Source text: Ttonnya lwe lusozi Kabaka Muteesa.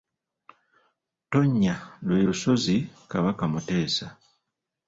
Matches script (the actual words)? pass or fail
pass